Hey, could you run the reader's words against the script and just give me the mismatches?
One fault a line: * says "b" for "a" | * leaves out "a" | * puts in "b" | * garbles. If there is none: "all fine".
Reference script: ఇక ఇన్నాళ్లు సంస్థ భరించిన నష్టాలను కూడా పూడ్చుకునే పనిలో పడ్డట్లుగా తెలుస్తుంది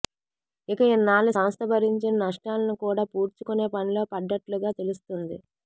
all fine